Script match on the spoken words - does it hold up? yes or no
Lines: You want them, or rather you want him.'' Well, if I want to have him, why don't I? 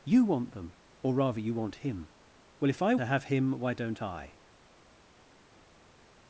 no